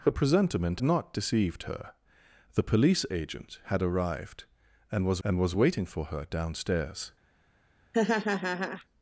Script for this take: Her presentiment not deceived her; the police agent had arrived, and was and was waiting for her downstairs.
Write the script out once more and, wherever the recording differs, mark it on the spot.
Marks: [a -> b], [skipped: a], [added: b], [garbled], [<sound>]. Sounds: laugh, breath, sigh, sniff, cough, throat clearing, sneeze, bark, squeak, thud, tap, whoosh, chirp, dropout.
Her presentiment not deceived her; the police agent had arrived, and was and was waiting for her downstairs. [laugh]